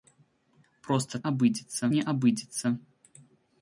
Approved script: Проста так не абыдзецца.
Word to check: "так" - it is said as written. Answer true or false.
false